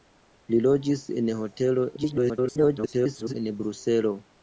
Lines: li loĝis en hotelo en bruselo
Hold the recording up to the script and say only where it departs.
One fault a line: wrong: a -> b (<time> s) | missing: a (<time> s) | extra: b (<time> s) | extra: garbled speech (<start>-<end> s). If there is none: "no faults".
extra: garbled speech (2.0-3.3 s)